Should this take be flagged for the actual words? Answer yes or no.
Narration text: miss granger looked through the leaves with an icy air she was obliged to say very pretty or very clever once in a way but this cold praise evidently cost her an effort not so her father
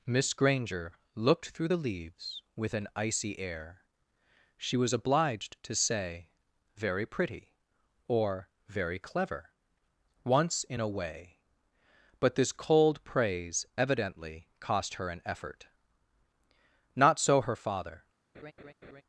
no